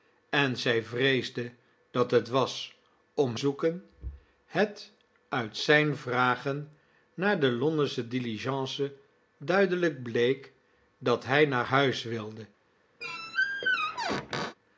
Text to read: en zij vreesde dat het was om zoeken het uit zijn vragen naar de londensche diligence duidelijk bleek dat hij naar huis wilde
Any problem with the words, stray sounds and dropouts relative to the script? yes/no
yes